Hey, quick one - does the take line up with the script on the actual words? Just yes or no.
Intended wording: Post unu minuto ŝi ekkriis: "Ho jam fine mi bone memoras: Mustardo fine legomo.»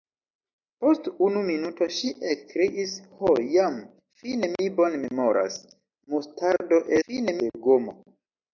yes